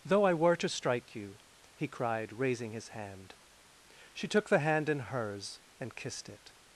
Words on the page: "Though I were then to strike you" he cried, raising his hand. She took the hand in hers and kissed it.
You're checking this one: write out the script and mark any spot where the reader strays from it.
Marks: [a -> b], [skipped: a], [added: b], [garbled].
"Though I were [skipped: then] to strike you" he cried, raising his hand. She took the hand in hers and kissed it.